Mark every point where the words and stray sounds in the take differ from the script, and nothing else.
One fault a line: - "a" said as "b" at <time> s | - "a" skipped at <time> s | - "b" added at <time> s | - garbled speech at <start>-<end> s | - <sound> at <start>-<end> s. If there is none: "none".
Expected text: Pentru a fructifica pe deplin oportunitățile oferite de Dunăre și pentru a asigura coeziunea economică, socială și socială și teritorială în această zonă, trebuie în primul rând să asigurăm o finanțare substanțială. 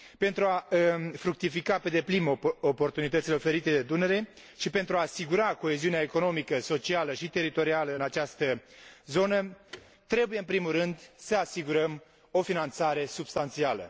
- "socială și" skipped at 7.3 s
- thud at 9.7-9.9 s